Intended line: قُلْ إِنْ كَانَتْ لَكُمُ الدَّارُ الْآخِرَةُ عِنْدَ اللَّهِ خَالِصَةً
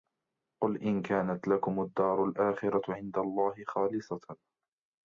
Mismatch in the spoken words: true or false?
false